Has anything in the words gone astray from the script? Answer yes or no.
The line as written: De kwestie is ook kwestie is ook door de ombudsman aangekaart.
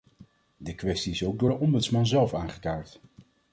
yes